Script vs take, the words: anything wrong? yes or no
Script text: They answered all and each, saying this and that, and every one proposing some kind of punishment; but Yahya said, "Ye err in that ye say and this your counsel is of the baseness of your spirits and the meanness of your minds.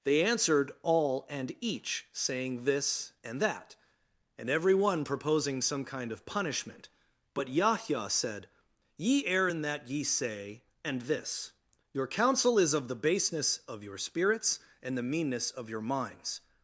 no